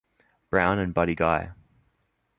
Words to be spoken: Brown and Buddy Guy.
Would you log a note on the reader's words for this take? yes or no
no